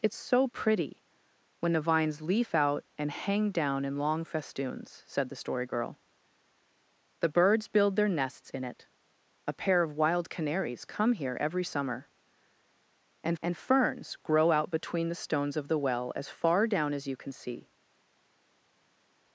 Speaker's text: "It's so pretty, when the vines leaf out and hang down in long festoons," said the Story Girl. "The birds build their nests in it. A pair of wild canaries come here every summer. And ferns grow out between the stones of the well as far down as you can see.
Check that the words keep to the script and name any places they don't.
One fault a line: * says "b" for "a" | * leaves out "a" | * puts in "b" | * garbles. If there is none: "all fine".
* puts in "and"